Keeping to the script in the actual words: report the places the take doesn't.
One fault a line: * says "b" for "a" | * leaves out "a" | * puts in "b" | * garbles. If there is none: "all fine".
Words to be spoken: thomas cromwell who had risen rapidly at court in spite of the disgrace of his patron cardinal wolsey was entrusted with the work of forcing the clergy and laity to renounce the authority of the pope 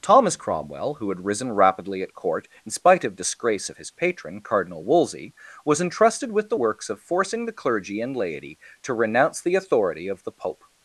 * leaves out "the"
* says "works" for "work"